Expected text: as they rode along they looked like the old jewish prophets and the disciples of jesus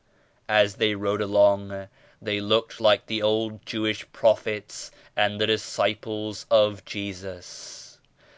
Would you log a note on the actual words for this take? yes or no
no